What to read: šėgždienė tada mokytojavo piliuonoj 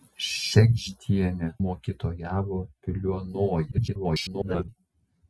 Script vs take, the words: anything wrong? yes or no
yes